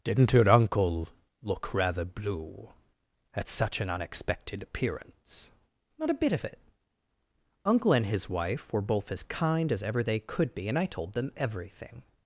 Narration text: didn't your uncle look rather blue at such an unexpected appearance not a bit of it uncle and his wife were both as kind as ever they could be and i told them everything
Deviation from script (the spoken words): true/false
false